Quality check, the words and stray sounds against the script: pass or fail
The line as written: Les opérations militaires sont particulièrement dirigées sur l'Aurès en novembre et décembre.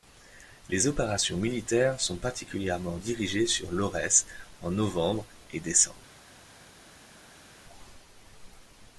pass